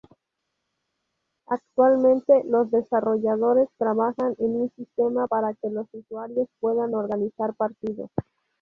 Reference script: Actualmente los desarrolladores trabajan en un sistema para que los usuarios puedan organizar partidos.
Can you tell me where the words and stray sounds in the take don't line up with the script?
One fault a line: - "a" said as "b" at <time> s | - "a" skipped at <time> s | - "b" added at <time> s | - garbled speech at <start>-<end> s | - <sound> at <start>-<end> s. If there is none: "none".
none